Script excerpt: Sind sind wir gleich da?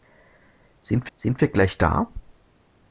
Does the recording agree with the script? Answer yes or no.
yes